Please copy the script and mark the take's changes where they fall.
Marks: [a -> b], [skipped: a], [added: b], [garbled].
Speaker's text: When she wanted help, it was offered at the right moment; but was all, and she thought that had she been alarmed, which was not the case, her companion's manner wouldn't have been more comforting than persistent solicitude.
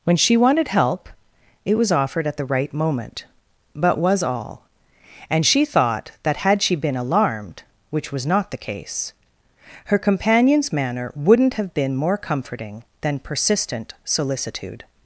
When she wanted help, it was offered at the right moment; but was all, and she thought that had she been alarmed, which was not the case, her companion's manner wouldn't have been more comforting than persistent solicitude.